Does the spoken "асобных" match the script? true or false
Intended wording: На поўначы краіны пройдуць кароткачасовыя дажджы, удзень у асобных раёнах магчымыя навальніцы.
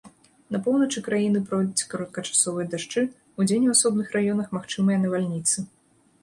true